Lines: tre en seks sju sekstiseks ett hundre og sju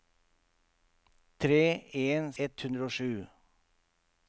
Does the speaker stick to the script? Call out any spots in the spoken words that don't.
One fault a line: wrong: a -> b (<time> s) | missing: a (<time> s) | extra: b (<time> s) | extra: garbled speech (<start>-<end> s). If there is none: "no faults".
missing: seks sju sekstiseks (2.2 s)